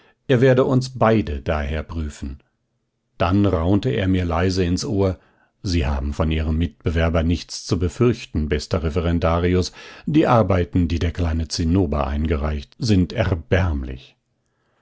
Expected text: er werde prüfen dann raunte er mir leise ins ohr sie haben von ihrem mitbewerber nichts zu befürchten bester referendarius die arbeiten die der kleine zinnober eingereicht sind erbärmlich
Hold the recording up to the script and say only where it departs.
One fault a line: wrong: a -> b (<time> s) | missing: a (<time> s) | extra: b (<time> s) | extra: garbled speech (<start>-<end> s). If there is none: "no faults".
extra: uns beide daher (0.7 s)